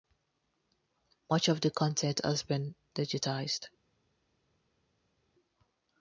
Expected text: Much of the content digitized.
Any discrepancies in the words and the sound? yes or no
yes